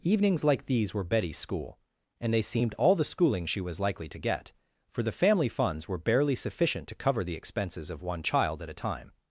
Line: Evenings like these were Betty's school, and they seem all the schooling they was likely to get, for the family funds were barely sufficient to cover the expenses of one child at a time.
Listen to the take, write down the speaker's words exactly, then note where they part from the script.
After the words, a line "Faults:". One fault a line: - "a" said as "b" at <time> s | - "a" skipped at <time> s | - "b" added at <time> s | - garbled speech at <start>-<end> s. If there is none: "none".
Evenings like these were Betty's school, and they seemed all the schooling she was likely to get, for the family funds were barely sufficient to cover the expenses of one child at a time.
Faults:
- "seem" said as "seemed" at 2.4 s
- "they" said as "she" at 3.5 s